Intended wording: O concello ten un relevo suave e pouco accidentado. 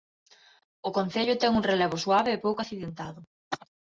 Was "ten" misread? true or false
false